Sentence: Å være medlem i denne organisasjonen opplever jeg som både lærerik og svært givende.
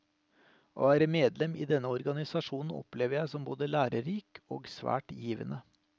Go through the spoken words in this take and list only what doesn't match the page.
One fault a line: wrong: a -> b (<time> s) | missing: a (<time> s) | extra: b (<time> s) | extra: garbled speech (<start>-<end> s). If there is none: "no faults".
no faults